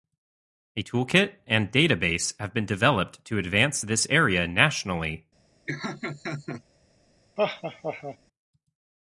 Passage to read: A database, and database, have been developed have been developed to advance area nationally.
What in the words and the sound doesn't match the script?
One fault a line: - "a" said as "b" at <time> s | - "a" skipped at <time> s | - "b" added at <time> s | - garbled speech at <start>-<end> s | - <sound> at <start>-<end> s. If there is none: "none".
- "database" said as "toolkit" at 0.8 s
- "have been developed" skipped at 3.2 s
- "this" added at 3.8 s
- laugh at 5.7-6.6 s
- laugh at 7.4-8.2 s